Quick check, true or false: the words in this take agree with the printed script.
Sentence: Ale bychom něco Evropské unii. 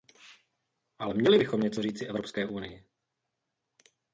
false